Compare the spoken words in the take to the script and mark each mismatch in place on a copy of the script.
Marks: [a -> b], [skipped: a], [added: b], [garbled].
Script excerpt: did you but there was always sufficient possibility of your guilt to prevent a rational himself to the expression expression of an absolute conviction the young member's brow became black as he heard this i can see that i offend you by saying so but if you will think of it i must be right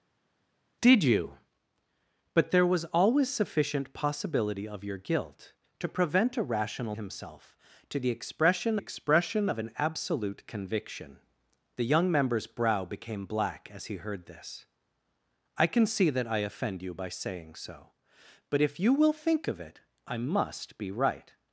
did you but there was always sufficient possibility of your guilt to prevent a rational himself to the expression expression of an absolute conviction the young member's brow became black as he heard this i can see that i offend you by saying so but if you will think of it i must be right